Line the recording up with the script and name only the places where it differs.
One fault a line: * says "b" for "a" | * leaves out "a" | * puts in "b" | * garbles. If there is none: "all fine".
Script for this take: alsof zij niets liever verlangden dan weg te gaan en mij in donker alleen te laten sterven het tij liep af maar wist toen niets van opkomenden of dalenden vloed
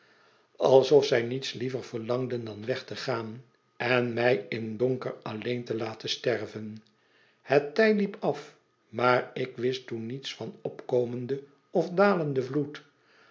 * puts in "ik"